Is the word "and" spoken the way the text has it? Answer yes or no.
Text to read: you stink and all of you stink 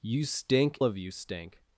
no